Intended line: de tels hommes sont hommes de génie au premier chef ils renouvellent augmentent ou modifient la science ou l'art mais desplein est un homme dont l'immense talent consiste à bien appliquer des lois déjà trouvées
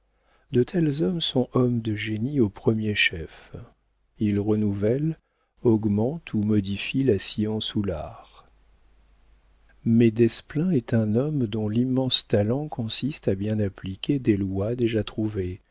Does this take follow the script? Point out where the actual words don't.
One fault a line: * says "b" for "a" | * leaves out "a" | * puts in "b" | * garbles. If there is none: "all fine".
all fine